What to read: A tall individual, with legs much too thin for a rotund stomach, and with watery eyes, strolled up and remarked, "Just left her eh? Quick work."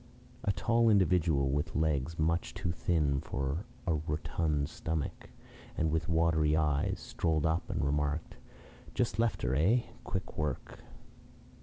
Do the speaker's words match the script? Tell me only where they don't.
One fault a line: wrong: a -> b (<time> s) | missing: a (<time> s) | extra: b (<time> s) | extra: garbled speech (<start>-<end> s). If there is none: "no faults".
no faults